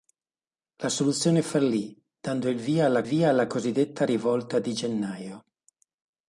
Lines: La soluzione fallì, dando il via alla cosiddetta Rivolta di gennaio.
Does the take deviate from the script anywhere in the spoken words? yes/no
yes